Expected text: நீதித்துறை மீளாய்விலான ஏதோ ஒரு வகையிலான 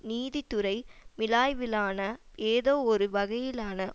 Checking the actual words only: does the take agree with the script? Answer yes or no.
yes